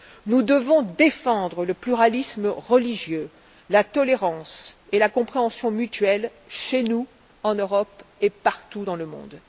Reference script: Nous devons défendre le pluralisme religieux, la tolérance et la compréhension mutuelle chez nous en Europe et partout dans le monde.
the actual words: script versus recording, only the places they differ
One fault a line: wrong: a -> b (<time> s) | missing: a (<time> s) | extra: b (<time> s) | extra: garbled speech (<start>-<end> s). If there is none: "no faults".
no faults